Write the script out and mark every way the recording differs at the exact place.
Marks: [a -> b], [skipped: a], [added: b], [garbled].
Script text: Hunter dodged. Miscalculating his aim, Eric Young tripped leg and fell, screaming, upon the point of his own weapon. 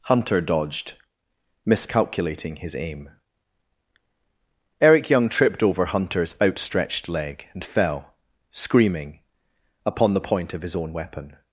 Hunter dodged. Miscalculating his aim, Eric Young tripped [added: over Hunter's outstretched] leg and fell, screaming, upon the point of his own weapon.